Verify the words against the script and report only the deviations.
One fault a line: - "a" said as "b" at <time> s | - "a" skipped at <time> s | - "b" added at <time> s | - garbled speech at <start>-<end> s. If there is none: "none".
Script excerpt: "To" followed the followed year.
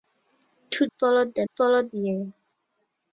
none